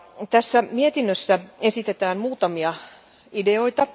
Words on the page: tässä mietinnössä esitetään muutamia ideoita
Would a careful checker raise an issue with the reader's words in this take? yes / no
no